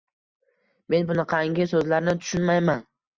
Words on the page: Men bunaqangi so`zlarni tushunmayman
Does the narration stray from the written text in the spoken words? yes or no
no